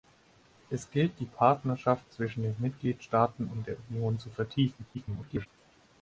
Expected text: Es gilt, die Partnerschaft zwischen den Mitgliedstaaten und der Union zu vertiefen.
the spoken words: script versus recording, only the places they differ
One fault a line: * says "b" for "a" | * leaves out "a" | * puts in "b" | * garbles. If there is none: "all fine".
* garbles